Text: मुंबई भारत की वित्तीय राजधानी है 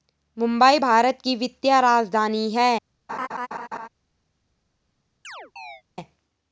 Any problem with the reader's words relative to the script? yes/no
no